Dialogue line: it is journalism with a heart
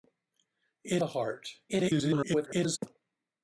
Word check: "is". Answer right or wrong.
wrong